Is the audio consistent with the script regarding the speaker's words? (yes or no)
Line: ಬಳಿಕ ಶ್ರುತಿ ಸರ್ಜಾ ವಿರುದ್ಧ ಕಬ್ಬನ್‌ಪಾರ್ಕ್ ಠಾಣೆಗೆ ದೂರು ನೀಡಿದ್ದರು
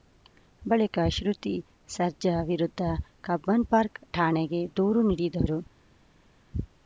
yes